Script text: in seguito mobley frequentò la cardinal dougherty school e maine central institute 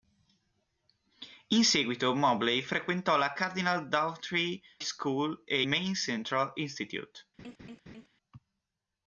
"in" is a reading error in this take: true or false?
false